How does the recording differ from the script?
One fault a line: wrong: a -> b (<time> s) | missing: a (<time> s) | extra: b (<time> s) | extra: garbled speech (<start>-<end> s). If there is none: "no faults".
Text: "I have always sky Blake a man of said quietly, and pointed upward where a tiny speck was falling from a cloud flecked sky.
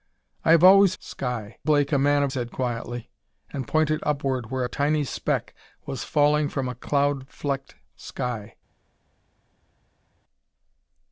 no faults